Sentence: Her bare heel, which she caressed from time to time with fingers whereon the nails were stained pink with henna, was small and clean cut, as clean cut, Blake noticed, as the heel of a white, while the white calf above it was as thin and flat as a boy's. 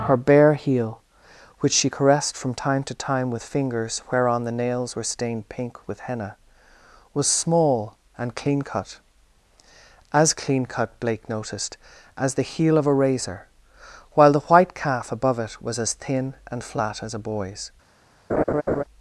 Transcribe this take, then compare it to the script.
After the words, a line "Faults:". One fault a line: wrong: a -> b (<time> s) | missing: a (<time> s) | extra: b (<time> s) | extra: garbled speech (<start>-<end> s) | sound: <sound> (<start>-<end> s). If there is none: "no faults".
Her bare heel, which she caressed from time to time with fingers whereon the nails were stained pink with henna, was small and clean cut, as clean cut, Blake noticed, as the heel of a razor, while the white calf above it was as thin and flat as a boy's.
Faults:
wrong: white -> razor (12.9 s)
sound: laugh (18.3-18.8 s)